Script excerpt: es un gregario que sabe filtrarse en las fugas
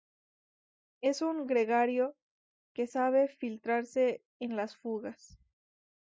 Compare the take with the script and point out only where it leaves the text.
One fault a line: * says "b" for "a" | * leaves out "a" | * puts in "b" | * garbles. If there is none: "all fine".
all fine